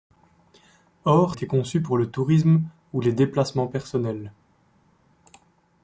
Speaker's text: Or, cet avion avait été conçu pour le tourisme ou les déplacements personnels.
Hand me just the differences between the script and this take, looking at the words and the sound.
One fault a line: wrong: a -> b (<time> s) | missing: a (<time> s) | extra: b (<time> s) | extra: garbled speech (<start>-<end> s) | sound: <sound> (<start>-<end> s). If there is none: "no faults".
missing: cet avion avait (1.4 s)